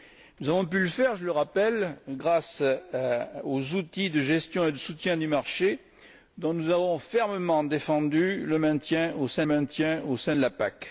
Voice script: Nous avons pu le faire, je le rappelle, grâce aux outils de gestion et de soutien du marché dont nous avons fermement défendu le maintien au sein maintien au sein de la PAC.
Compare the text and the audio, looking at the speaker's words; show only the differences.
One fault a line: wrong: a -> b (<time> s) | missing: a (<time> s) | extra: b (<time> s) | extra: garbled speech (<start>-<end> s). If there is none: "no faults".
no faults